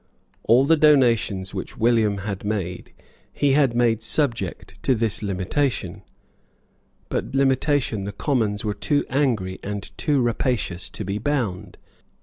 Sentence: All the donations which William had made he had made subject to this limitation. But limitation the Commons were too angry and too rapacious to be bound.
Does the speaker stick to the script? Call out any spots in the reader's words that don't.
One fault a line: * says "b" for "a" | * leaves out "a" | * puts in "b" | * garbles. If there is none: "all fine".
all fine